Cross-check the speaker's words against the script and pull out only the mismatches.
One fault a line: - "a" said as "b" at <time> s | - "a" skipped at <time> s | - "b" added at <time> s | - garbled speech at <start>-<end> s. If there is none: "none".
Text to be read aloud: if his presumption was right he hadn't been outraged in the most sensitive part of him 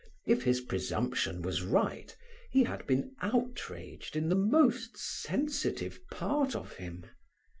- "hadn't" said as "had" at 2.6 s